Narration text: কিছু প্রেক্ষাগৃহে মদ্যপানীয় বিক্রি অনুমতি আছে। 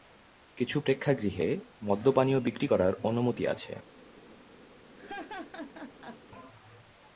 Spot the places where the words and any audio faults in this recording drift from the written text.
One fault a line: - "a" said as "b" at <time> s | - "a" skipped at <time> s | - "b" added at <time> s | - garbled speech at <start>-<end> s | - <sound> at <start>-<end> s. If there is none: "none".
- "করার" added at 2.6 s
- laugh at 4.9-6.2 s